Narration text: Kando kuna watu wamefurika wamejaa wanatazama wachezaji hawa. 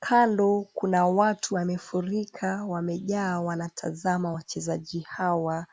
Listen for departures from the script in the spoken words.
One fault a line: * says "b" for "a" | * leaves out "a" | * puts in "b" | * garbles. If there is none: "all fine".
all fine